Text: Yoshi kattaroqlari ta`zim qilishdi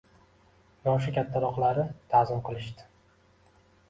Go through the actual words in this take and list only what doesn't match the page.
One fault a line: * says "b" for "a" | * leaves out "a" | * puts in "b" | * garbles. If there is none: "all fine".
all fine